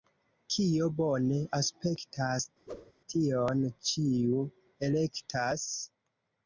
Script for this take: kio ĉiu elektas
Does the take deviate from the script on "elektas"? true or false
false